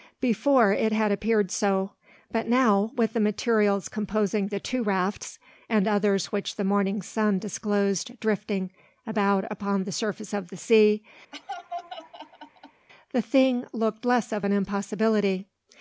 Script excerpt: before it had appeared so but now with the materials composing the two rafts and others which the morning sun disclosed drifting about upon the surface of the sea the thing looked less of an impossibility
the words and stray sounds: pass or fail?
fail